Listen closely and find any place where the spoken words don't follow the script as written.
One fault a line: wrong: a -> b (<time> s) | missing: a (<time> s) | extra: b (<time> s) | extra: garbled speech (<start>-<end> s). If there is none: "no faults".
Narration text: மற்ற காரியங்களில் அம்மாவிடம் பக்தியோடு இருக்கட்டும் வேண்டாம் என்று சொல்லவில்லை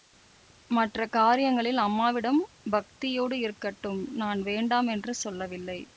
extra: நான் (4.2 s)